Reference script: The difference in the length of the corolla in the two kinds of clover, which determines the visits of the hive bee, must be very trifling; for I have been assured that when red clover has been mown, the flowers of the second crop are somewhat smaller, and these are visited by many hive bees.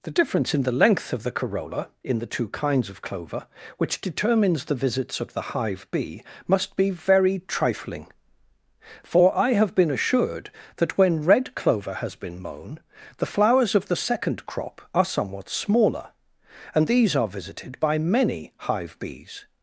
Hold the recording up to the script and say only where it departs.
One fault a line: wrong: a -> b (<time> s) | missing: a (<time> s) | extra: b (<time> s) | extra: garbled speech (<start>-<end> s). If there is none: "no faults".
no faults